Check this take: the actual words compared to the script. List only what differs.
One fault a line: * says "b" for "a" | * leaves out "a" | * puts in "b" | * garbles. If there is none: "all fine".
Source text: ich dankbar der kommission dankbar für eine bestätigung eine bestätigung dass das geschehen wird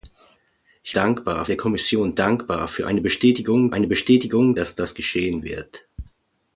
all fine